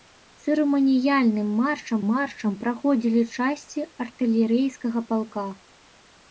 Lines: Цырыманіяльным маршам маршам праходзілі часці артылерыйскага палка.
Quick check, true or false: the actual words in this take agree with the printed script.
true